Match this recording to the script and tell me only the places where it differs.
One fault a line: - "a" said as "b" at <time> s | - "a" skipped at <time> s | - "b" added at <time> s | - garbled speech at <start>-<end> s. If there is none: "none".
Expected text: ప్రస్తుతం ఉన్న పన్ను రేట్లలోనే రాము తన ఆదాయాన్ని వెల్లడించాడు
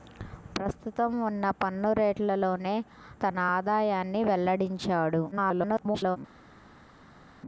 - "రాము" skipped at 2.8 s
- garbled speech at 5.3-6.2 s